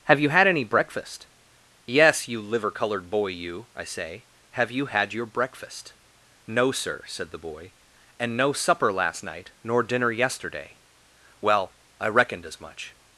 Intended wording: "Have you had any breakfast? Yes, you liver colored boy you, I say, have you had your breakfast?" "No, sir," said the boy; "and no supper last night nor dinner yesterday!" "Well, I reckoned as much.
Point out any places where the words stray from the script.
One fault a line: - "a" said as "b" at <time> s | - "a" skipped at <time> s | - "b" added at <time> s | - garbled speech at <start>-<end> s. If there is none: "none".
none